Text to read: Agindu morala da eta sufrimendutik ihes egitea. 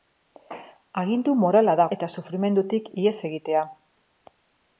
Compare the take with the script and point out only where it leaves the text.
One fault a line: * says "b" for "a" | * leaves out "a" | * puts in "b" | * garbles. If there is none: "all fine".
all fine